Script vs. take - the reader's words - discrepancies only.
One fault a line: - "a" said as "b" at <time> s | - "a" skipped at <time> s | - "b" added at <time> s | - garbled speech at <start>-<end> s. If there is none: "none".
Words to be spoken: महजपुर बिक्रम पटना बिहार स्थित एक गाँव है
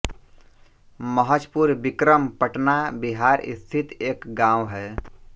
none